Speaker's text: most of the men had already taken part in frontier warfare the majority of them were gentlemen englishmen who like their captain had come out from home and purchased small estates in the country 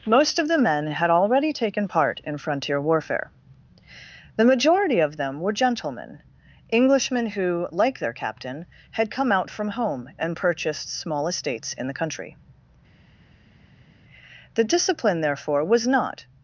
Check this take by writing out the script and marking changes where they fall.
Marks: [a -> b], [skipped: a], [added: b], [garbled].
most of the men had already taken part in frontier warfare the majority of them were gentlemen englishmen who like their captain had come out from home and purchased small estates in the country [added: the discipline therefore was not]